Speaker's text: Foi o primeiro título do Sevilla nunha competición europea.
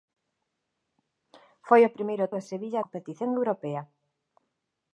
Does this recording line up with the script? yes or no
no